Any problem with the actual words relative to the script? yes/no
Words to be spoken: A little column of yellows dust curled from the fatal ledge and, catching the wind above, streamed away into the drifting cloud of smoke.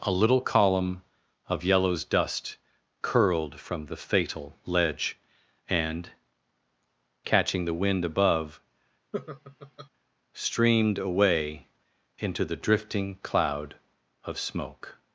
no